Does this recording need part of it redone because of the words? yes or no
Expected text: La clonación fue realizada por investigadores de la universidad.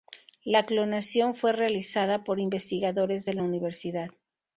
no